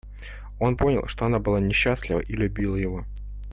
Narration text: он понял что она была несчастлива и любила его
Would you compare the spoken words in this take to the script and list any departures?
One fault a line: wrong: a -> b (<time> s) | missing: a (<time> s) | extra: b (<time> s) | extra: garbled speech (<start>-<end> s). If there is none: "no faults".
no faults